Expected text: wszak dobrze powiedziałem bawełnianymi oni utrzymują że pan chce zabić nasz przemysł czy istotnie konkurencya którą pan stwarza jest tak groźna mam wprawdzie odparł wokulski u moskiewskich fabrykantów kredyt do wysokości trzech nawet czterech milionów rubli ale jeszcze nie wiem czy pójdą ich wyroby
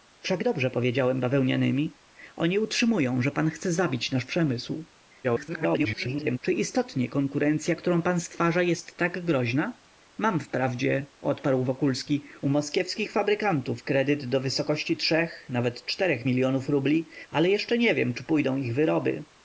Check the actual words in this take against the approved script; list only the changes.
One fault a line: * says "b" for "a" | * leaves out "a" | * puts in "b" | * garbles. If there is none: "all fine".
* garbles